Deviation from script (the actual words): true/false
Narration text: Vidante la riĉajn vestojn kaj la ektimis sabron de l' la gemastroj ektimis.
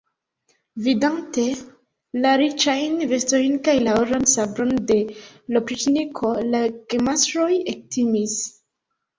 true